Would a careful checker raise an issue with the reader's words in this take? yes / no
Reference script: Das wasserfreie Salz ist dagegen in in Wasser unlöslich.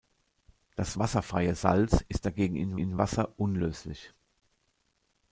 no